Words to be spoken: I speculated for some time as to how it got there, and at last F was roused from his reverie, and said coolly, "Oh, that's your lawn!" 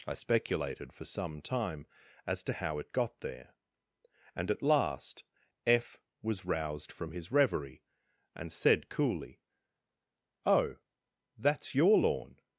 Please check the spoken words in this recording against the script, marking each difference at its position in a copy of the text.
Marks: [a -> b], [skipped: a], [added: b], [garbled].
I speculated for some time as to how it got there, and at last F was roused from his reverie, and said coolly, "Oh, that's your lawn!"